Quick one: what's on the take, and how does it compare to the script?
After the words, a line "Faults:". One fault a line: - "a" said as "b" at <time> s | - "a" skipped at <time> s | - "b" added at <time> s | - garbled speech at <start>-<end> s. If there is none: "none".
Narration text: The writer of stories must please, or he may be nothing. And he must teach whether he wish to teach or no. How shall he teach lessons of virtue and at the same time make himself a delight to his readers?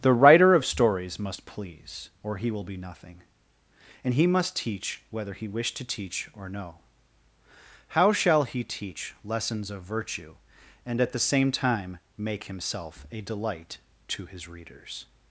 The writer of stories must please, or he will be nothing. And he must teach whether he wish to teach or no. How shall he teach lessons of virtue and at the same time make himself a delight to his readers?
Faults:
- "may" said as "will" at 2.5 s